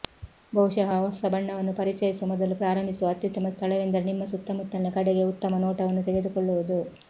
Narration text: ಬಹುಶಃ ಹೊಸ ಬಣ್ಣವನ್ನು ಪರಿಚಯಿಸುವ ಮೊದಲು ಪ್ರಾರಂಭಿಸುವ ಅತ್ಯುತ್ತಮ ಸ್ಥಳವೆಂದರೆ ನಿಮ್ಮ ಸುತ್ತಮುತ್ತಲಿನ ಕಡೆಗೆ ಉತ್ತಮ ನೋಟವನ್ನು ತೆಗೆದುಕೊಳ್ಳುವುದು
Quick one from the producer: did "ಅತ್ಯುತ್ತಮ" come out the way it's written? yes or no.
yes